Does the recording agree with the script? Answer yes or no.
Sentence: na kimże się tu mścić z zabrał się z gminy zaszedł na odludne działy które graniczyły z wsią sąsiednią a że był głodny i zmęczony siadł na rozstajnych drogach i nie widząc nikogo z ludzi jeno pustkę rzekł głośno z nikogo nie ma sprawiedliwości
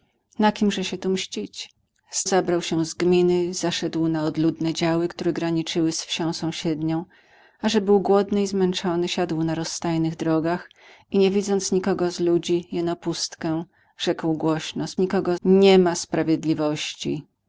yes